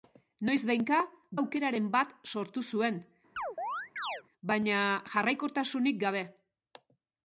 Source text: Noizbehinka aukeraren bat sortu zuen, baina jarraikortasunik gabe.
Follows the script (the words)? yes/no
yes